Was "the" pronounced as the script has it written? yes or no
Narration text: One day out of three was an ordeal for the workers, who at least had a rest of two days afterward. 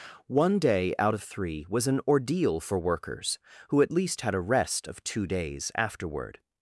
no